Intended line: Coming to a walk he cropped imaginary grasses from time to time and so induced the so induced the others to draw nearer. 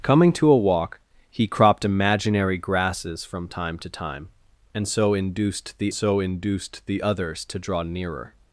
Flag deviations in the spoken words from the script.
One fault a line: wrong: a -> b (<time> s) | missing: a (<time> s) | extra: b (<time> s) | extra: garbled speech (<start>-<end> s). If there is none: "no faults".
no faults